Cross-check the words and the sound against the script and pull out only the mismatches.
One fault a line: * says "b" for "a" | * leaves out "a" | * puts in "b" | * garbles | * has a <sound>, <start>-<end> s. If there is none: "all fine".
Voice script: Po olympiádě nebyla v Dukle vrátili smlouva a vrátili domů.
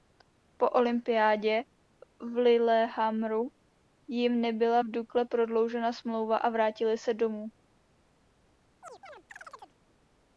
* puts in "v Lillehammeru jim"
* says "prodloužena" for "vrátili"
* puts in "se"
* has a chirp, 8.8-9.8 s